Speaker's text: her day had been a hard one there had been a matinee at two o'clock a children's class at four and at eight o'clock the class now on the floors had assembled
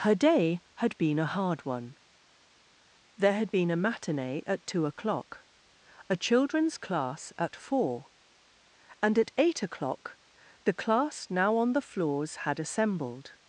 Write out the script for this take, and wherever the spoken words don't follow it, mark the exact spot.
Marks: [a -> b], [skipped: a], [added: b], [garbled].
her day had been a hard one there had been a matinee at two o'clock a children's class at four and at eight o'clock the class now on the floors had assembled